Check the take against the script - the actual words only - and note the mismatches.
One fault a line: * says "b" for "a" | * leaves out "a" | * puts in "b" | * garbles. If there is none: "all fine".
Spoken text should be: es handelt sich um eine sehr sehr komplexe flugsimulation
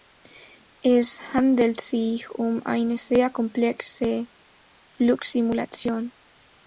* leaves out "sehr"